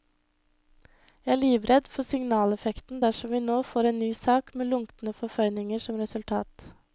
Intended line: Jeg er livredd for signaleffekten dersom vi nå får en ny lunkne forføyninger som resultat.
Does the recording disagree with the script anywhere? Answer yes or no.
yes